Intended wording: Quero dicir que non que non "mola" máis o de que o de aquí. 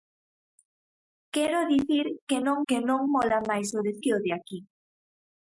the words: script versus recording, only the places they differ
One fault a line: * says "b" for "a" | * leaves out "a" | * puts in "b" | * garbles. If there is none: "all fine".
all fine